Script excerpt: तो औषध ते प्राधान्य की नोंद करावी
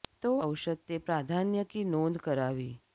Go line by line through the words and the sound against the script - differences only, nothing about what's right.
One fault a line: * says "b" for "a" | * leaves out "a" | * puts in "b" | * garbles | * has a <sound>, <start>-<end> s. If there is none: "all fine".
all fine